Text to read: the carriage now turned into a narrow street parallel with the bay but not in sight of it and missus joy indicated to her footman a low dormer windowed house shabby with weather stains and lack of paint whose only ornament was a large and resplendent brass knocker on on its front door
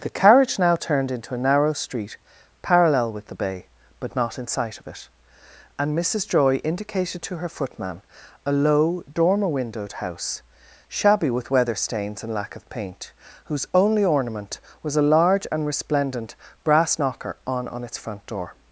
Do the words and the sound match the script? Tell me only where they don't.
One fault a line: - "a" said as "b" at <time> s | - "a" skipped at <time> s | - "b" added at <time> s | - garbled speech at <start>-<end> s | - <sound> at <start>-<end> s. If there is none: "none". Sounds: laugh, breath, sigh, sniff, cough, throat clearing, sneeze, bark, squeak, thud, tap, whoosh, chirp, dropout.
none